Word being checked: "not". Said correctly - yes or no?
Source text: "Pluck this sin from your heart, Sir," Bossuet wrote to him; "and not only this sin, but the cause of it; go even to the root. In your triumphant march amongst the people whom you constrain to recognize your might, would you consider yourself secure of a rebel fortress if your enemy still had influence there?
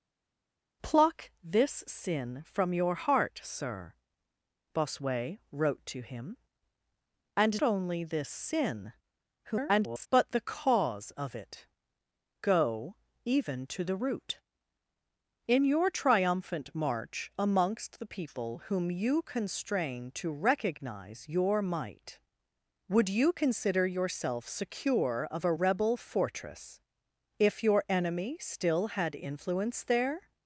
no